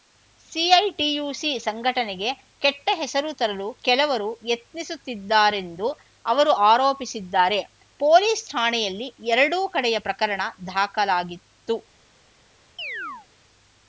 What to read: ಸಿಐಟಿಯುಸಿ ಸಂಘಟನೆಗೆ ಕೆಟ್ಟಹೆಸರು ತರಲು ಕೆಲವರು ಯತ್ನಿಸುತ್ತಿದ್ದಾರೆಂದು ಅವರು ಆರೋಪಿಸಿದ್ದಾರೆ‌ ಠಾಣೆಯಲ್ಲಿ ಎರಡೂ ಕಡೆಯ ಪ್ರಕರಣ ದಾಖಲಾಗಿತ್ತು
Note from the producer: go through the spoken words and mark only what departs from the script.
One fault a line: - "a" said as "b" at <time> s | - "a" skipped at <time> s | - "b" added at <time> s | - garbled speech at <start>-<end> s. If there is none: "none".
- "ಪೊಲೀಸ್" added at 8.0 s